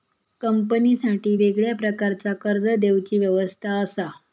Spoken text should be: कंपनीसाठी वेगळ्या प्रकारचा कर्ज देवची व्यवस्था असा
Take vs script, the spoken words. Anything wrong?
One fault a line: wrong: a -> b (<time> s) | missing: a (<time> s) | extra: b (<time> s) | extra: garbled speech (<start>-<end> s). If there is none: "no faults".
no faults